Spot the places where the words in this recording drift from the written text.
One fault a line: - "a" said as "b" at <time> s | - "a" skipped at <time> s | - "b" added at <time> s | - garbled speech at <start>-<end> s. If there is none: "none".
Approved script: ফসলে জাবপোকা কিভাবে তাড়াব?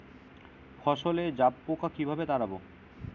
none